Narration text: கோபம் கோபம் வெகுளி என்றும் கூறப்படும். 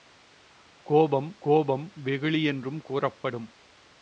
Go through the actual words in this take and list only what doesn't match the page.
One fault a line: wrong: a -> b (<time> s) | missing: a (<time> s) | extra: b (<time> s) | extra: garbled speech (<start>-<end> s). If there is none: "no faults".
no faults